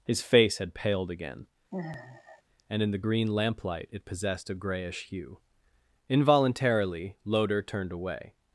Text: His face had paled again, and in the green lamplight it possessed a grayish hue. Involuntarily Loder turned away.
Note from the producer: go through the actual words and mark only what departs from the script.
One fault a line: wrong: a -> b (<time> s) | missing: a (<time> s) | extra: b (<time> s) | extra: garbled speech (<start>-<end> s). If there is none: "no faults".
no faults